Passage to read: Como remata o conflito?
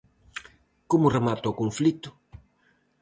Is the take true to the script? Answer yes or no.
yes